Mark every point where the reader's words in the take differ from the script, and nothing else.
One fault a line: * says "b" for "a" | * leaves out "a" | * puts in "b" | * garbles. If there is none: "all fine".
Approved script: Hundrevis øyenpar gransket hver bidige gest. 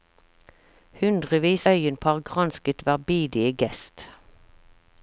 all fine